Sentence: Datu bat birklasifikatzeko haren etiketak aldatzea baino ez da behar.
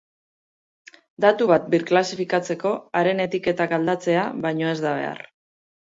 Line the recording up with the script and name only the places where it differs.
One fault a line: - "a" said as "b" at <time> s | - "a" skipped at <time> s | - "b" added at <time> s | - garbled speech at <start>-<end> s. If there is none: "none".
none